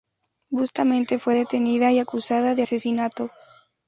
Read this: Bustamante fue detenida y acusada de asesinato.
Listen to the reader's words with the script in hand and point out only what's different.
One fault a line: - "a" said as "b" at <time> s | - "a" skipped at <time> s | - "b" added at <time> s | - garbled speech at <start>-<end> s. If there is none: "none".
none